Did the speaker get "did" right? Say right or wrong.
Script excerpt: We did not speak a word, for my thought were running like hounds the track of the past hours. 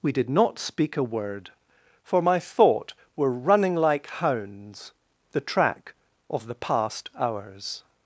right